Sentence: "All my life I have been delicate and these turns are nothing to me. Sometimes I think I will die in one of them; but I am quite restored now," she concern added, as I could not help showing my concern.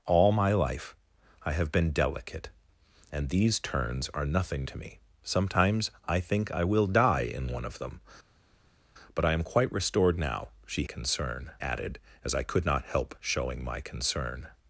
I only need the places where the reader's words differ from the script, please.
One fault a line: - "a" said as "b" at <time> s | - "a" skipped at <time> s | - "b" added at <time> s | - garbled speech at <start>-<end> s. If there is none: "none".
none